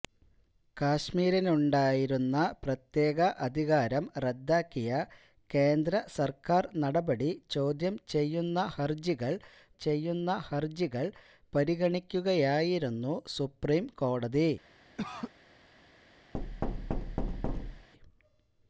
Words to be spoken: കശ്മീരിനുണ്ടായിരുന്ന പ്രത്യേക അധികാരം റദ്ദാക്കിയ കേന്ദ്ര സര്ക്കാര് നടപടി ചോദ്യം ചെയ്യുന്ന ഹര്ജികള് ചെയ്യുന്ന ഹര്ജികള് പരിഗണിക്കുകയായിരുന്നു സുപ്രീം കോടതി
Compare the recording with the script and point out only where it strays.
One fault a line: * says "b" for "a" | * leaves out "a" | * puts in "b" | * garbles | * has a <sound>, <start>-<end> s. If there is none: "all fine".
* has a cough, 15.0-15.3 s
* has a thud, 16.3-17.9 s